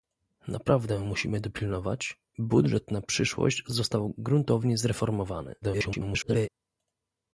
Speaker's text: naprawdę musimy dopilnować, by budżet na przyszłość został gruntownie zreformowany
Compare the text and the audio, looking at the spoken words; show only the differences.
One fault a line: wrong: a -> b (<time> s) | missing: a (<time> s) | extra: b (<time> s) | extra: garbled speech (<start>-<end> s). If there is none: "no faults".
missing: by (2.2 s)
extra: garbled speech (5.6-6.5 s)